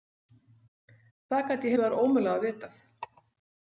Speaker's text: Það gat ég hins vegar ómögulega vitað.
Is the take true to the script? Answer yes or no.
no